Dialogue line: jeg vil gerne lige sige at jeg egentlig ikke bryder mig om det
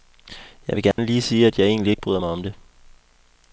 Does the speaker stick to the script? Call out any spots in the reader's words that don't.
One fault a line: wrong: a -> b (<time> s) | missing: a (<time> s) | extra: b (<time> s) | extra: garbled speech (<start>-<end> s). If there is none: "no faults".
no faults